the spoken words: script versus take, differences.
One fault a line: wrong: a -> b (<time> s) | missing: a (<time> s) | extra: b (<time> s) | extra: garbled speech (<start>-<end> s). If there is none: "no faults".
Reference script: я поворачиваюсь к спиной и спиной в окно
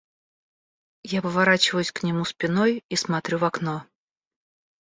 extra: нему (2.0 s)
wrong: спиной -> смотрю (2.9 s)